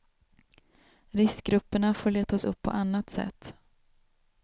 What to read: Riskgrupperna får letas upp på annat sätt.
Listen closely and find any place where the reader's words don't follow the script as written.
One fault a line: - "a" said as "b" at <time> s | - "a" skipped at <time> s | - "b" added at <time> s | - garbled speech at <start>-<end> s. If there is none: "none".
none